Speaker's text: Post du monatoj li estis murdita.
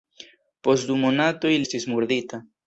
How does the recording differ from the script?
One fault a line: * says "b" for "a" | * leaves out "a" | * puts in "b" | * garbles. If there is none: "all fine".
* leaves out "li"